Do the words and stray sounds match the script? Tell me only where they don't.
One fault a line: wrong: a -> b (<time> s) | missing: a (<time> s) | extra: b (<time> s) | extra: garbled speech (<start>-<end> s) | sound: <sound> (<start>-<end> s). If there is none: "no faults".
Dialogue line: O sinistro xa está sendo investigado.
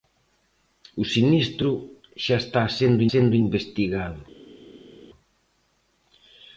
extra: sendo (3.1 s)